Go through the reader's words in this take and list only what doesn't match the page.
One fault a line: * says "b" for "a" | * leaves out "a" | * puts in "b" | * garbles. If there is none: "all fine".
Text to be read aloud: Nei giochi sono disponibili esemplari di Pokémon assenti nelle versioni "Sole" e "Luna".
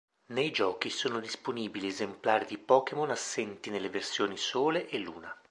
all fine